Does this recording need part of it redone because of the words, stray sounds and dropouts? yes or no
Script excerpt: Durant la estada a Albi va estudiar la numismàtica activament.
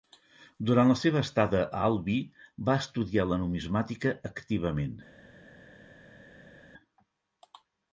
yes